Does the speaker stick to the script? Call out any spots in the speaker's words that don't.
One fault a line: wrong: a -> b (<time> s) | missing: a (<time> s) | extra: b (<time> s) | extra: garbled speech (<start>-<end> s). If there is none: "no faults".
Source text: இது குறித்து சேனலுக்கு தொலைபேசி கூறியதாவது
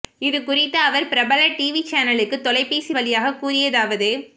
extra: அவர் பிரபல டிவி (0.8 s)
extra: வழியாக (2.9 s)